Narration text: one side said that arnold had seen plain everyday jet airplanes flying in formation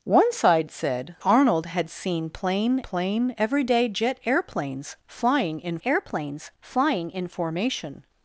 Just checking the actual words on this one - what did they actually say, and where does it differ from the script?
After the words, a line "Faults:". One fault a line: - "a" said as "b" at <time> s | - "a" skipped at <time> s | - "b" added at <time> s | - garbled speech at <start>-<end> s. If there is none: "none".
one side said arnold had seen plain plain everyday jet airplanes flying in airplanes flying in formation
Faults:
- "that" skipped at 1.1 s
- "plain" added at 2.8 s
- "airplanes flying in" added at 5.8 s